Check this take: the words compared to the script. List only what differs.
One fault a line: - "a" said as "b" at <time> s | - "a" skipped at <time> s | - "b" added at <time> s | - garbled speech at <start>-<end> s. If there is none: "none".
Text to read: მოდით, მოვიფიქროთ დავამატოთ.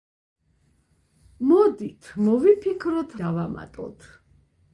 none